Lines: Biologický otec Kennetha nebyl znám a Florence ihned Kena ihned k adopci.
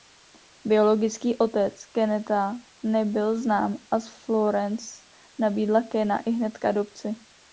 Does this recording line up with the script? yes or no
no